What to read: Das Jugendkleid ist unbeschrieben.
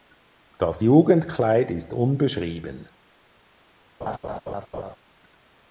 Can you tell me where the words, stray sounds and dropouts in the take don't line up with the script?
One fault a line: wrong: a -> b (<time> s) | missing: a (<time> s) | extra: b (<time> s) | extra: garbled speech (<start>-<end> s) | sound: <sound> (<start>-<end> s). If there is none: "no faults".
sound: laugh (4.0-5.0 s)